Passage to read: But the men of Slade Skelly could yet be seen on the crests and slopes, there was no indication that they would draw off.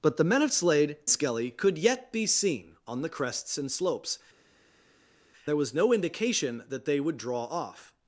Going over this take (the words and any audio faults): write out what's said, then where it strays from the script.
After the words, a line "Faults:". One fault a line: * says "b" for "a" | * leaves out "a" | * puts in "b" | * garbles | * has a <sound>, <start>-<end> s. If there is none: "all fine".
But the men of Slade Skelly could yet be seen on the crests and slopes, there was no indication that they would draw off.
Faults:
all fine